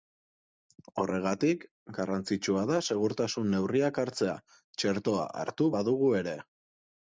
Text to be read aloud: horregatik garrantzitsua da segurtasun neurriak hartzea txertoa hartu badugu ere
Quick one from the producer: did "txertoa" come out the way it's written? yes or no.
yes